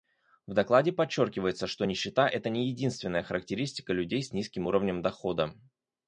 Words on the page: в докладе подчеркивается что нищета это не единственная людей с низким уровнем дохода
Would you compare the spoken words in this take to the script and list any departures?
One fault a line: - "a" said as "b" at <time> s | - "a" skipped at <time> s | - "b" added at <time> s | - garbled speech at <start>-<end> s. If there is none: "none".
- "характеристика" added at 3.2 s